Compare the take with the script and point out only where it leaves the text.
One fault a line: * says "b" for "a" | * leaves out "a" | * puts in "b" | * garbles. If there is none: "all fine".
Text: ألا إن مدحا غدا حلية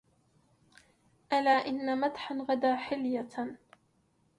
all fine